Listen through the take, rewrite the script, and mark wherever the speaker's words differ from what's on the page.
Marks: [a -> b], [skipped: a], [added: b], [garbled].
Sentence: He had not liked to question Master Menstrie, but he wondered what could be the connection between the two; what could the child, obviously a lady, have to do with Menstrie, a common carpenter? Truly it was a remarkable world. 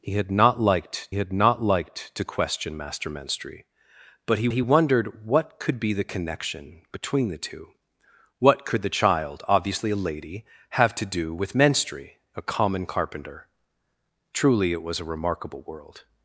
He had not liked [added: had not liked] to question Master Menstrie, but he [added: he] wondered what could be the connection between the two; what could the child, obviously a lady, have to do with Menstrie, a common carpenter? Truly it was a remarkable world.